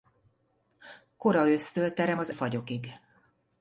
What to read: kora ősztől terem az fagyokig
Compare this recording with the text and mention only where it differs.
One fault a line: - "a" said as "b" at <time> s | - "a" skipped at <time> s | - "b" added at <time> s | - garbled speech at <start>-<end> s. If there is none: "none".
none